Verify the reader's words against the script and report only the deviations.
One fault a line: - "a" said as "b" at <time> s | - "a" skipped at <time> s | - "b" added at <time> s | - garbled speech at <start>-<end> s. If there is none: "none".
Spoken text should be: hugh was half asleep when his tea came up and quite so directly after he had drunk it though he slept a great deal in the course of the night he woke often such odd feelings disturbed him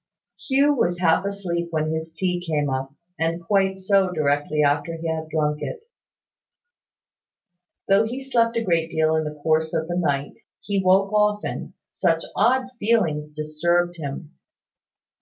none